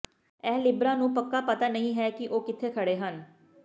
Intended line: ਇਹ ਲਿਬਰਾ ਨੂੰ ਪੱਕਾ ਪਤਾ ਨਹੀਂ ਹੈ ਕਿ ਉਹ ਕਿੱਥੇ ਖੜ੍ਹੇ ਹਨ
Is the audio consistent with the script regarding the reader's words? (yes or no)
yes